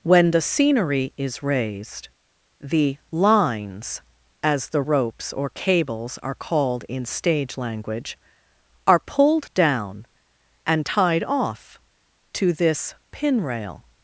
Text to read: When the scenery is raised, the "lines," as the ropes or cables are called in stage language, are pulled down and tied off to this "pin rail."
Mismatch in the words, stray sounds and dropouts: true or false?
false